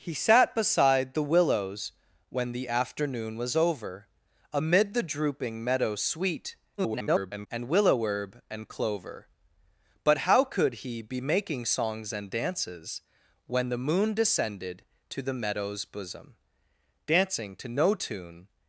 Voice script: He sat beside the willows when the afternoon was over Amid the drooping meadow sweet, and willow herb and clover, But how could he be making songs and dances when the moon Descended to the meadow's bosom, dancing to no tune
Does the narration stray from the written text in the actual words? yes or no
yes